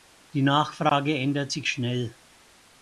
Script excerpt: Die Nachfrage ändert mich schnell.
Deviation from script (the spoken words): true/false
true